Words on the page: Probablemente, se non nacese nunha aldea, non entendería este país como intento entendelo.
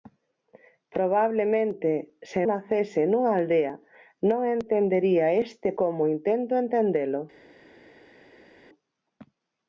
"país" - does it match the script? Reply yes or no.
no